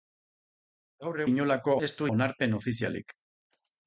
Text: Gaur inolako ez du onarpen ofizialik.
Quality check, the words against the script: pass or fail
pass